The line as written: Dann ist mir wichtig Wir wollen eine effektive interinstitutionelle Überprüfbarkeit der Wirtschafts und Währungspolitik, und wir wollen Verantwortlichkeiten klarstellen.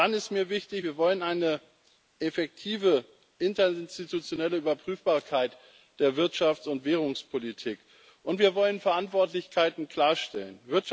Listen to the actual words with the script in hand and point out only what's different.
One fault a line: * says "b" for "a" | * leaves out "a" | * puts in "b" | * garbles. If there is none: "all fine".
all fine